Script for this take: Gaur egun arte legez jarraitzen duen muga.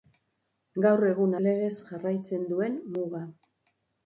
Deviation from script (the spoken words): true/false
true